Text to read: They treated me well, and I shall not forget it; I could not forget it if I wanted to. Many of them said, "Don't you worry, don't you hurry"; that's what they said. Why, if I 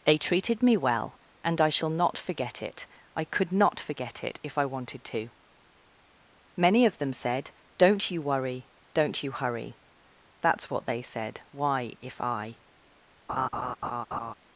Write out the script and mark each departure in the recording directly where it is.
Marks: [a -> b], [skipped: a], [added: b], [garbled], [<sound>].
They treated me well, and I shall not forget it; I could not forget it if I wanted to. Many of them said, "Don't you worry, don't you hurry"; that's what they said. Why, if I [laugh]